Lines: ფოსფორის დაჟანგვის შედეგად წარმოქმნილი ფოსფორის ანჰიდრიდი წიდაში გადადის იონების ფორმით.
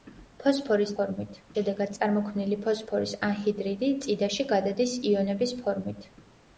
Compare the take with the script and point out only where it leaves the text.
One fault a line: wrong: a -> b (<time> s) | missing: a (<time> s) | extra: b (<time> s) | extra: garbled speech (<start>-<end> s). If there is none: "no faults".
wrong: დაჟანგვის -> ფორმით (1.0 s)